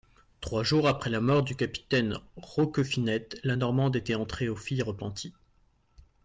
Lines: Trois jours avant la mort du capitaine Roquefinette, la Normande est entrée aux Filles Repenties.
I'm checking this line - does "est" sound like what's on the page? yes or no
no